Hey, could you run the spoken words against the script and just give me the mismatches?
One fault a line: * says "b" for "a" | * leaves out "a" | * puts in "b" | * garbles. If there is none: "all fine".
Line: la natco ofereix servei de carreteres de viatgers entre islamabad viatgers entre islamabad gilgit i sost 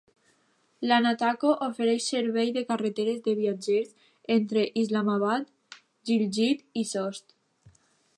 * leaves out "viatgers entre islamabad"